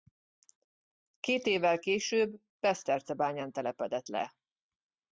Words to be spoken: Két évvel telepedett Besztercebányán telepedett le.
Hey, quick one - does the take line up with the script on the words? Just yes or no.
no